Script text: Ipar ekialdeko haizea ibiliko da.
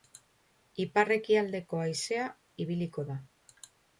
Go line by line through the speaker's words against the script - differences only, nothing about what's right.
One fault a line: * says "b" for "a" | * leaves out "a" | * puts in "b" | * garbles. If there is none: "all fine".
all fine